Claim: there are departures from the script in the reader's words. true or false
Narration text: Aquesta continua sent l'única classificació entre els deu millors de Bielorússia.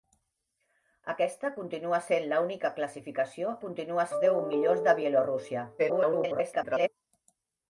true